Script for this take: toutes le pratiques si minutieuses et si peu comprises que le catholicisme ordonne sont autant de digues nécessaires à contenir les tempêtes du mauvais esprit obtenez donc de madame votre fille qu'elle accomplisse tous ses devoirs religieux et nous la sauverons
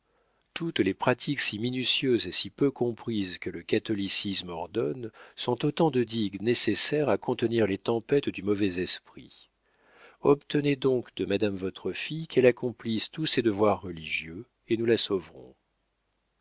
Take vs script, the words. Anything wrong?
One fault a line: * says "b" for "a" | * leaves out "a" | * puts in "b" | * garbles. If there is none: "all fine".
* says "les" for "le"